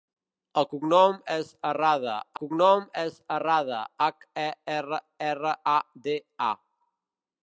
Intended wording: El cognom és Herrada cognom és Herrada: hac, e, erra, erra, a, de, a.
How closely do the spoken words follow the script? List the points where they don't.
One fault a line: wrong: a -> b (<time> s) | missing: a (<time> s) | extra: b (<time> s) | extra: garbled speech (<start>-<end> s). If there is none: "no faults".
no faults